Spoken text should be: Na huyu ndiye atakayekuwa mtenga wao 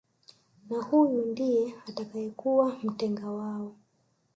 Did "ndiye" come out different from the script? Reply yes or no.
no